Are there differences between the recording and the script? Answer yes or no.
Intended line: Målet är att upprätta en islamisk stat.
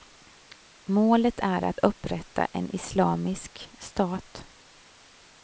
no